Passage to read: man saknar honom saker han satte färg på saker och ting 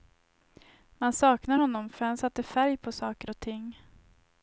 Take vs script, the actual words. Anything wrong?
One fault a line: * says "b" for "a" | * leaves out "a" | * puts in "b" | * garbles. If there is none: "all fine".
* says "för" for "saker"